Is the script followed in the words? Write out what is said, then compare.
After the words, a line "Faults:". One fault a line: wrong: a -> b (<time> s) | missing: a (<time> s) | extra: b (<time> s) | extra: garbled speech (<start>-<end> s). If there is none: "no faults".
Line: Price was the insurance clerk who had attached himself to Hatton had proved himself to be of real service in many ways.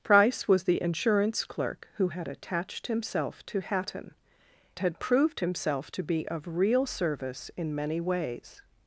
Price was the insurance clerk who had attached himself to Hatton had proved himself to be of real service in many ways.
Faults:
no faults